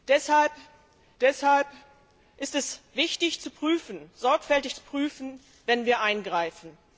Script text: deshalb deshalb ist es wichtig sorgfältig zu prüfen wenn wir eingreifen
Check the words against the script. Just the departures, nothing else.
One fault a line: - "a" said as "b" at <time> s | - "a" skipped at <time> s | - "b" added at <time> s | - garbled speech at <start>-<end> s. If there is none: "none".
none